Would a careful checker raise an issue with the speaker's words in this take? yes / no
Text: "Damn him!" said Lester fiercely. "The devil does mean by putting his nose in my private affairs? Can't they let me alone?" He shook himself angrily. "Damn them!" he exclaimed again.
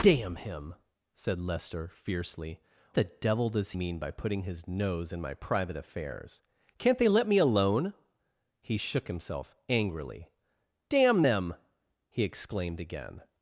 no